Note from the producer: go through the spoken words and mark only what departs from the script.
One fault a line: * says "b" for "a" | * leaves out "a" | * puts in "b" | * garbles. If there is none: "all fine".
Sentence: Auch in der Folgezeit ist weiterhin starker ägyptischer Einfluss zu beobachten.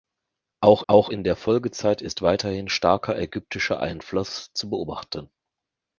* puts in "auch"